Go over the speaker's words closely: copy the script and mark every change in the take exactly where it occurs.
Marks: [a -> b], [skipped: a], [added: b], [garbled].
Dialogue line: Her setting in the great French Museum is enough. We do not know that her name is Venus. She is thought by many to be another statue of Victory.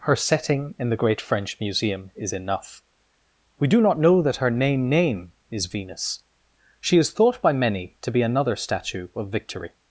Her setting in the great French Museum is enough. We do not know that her name [added: name] is Venus. She is thought by many to be another statue of Victory.